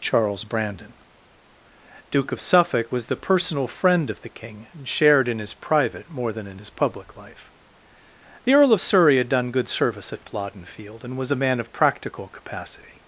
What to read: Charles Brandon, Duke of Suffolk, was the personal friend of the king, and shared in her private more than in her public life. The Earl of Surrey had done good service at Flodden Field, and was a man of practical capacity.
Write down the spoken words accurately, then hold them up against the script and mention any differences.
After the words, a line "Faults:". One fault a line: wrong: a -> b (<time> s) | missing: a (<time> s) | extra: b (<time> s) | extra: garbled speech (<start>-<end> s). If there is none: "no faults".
Charles Brandon, Duke of Suffolk, was the personal friend of the king, and shared in his private more than in his public life. The Earl of Surrey had done good service at Flodden Field, and was a man of practical capacity.
Faults:
wrong: her -> his (5.4 s)
wrong: her -> his (6.6 s)